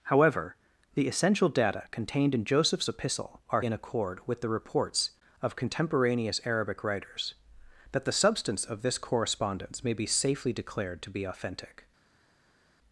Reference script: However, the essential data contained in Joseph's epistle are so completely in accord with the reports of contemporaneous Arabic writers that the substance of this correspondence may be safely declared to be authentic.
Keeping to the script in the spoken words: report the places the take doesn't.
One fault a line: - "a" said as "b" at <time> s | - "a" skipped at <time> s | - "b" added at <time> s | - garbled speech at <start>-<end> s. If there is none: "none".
- "so completely" skipped at 3.6 s